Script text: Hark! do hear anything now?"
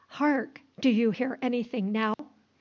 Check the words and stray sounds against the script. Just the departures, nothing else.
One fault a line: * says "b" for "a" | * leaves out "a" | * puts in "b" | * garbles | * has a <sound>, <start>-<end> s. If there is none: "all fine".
* puts in "you"
* has a dropout, 2.1-2.2 s